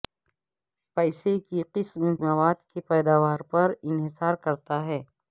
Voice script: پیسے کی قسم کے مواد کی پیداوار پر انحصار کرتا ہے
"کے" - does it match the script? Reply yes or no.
no